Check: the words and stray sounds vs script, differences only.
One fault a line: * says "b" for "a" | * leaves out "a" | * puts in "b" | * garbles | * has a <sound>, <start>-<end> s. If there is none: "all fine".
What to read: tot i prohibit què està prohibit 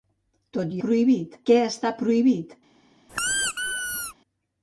* has a squeak, 3.1-4.1 s